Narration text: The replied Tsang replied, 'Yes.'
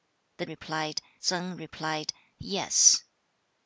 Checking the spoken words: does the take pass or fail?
pass